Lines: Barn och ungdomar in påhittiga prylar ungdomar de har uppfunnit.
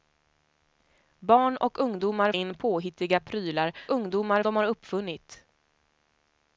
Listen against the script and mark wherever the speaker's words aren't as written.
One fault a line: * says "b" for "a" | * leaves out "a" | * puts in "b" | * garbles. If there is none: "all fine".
all fine